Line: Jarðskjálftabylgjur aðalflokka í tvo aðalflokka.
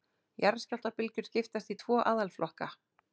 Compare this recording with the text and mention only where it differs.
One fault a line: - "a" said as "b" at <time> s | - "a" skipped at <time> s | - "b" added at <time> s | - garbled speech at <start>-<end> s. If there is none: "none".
- "aðalflokka" said as "skiptast" at 1.3 s